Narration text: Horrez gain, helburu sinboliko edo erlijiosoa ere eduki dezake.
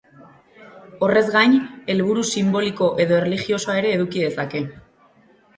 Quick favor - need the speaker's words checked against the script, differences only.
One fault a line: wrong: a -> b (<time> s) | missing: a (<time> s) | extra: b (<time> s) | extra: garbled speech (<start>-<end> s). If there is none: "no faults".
no faults